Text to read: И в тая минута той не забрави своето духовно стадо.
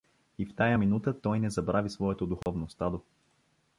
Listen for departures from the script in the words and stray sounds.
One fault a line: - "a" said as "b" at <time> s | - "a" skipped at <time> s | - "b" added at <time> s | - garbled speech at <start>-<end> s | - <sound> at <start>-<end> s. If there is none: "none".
- dropout at 2.4-2.5 s